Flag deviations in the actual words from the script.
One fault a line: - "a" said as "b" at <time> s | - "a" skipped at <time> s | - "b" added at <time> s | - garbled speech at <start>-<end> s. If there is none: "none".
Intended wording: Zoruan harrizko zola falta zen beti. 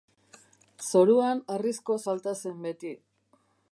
- "zola" skipped at 2.0 s